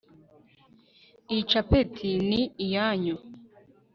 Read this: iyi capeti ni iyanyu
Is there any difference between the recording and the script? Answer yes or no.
no